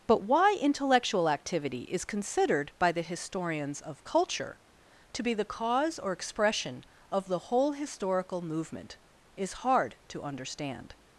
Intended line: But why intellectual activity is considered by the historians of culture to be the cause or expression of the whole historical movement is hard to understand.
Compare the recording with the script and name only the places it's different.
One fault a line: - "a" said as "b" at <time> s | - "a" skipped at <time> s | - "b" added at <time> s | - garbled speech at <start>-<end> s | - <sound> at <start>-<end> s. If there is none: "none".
none